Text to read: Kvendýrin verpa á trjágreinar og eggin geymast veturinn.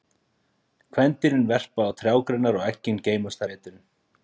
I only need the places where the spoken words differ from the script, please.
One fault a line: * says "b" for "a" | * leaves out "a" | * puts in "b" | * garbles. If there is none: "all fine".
all fine